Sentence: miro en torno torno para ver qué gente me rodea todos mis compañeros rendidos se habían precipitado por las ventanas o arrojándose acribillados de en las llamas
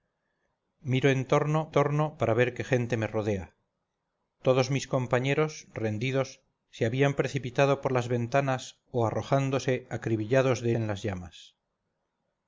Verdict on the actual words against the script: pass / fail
pass